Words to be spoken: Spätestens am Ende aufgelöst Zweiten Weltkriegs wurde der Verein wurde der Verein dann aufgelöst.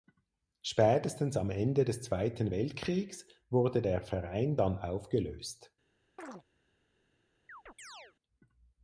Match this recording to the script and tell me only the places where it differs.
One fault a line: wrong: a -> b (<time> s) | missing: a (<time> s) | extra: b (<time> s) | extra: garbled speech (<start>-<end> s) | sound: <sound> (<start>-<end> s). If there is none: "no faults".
wrong: aufgelöst -> des (1.9 s)
missing: wurde der Verein (4.6 s)
sound: chirp (6.2-6.4 s)
sound: chirp (7.5-8.2 s)